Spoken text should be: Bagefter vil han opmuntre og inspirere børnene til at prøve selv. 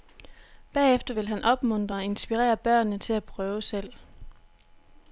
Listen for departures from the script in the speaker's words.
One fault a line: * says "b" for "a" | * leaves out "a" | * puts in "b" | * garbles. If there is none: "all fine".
all fine